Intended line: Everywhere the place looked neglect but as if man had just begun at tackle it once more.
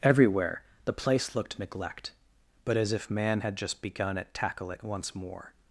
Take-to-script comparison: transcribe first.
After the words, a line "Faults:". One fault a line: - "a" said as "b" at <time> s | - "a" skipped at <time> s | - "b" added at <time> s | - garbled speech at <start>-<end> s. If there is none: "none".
Everywhere the place looked neglect but as if man had just begun at tackle it once more.
Faults:
none